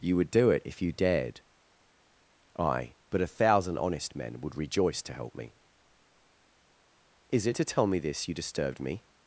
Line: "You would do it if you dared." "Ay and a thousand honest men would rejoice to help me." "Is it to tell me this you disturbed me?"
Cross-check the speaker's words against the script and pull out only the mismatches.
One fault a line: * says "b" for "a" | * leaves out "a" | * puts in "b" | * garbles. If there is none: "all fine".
* says "but" for "and"